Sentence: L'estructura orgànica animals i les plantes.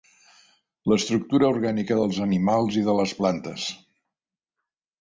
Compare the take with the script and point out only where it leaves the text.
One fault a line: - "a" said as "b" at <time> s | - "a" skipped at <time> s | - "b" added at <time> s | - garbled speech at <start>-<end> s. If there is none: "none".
- "dels" added at 2.0 s
- "de" added at 2.9 s